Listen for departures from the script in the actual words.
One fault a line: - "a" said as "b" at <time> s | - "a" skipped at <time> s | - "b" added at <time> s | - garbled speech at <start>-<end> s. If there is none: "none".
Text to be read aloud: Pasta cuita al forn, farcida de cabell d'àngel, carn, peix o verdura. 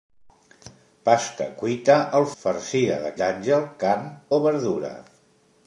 - "forn" skipped at 2.2 s
- "cabell" skipped at 3.1 s
- "peix" skipped at 4.1 s